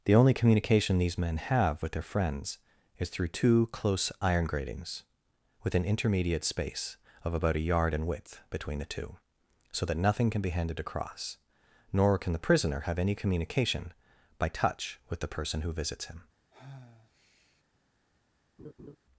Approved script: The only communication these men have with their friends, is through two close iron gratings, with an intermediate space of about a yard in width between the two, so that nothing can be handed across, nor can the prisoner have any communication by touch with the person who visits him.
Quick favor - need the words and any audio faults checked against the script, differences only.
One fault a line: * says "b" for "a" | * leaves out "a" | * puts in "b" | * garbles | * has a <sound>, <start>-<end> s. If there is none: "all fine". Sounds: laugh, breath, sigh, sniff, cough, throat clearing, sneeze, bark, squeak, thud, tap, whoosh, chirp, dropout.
* has a sigh, 16.5-17.6 s
* has a laugh, 18.6-19.0 s